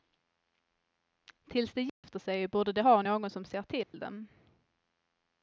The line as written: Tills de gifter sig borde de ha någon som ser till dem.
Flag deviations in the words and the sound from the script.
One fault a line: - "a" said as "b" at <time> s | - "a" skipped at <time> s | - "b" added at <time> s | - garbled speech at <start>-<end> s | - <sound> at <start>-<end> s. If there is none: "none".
- dropout at 1.9-2.0 s
- dropout at 3.8-3.9 s